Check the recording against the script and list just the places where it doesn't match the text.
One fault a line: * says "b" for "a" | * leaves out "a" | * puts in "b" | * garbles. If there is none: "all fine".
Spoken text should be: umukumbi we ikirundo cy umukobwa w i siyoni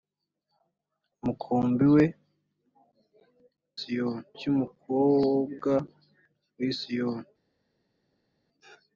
* says "siyoni" for "ikirundo"